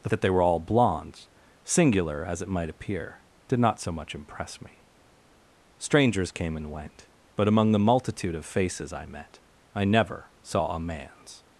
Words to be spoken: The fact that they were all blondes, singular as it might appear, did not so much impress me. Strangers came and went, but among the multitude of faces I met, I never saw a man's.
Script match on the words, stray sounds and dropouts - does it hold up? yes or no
no